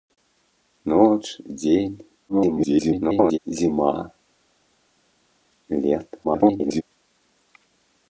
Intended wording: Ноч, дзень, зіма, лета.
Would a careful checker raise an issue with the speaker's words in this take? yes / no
yes